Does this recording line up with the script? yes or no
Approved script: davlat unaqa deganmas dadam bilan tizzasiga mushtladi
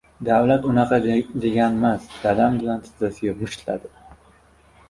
yes